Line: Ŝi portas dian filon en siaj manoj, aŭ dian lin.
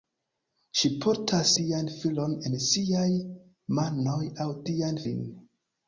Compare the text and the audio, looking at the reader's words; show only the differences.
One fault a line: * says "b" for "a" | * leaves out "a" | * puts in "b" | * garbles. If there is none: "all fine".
all fine